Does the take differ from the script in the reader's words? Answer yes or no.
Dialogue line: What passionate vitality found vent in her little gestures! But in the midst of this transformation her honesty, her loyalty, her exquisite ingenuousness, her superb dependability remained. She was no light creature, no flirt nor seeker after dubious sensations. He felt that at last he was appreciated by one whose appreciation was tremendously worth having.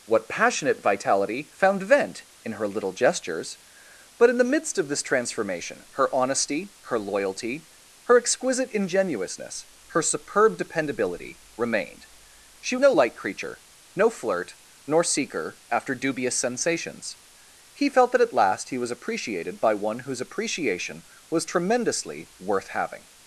yes